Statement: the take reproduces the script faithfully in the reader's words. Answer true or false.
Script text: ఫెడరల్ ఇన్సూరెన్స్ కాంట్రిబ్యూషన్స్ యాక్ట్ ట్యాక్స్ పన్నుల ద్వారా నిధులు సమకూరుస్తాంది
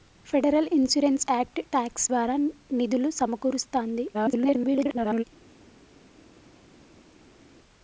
false